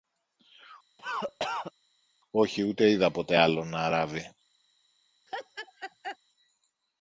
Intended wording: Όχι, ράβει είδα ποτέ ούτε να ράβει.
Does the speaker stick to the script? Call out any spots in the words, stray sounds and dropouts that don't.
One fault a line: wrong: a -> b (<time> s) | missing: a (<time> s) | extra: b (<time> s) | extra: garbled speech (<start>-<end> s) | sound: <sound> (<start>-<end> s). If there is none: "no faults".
sound: cough (1.0-1.7 s)
wrong: ράβει -> ούτε (2.6 s)
wrong: ούτε -> άλλον (3.3 s)
sound: laugh (5.3-6.2 s)